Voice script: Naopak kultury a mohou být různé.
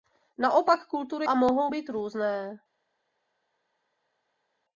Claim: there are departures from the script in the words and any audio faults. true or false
false